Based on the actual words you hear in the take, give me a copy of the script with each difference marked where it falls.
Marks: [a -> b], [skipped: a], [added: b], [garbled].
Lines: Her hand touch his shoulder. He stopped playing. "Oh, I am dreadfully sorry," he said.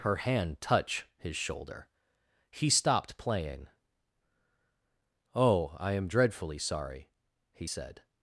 Her hand touch his shoulder. He stopped playing. "Oh, I am dreadfully sorry," he said.